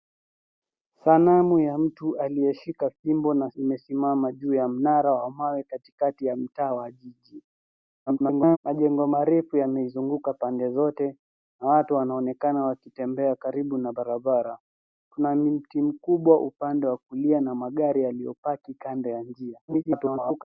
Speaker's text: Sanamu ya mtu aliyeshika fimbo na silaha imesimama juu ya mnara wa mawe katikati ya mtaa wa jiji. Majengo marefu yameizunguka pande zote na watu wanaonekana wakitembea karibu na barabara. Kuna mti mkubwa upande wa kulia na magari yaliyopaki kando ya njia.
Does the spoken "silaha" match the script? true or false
false